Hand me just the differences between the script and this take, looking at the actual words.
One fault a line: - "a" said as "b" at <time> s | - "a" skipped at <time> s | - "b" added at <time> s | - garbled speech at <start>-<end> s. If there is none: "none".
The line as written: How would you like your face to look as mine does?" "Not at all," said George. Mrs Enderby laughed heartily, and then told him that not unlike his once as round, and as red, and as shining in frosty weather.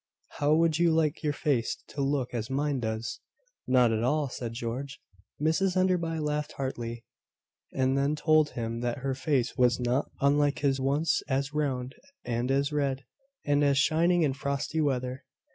- "her face was" added at 9.0 s